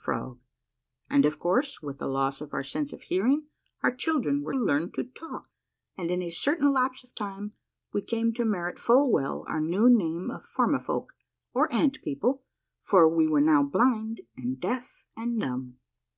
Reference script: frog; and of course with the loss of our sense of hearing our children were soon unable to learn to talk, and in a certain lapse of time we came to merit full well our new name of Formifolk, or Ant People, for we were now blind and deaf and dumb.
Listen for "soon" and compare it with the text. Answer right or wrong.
wrong